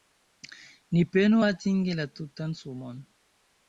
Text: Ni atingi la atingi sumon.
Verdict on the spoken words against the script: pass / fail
fail